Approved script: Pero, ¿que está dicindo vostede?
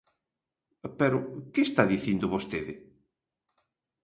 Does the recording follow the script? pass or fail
pass